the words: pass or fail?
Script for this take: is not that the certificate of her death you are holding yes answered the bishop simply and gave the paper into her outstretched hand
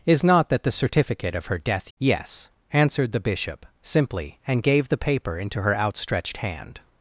fail